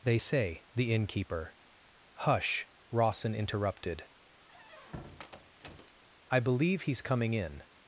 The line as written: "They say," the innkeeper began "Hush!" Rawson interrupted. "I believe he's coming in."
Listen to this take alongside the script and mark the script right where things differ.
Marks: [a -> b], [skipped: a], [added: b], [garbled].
"They say," the innkeeper [skipped: began] "Hush!" Rawson interrupted. "I believe he's coming in."